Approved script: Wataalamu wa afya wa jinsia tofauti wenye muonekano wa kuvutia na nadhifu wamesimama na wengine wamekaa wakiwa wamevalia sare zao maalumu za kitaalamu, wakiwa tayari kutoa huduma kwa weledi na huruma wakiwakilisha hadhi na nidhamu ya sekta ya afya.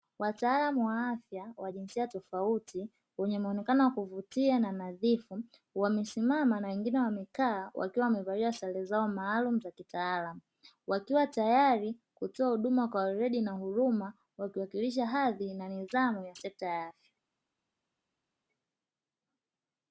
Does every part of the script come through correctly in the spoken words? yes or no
yes